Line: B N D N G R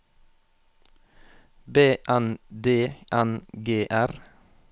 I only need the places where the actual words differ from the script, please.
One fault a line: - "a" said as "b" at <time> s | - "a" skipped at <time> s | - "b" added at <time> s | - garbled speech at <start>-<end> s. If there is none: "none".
none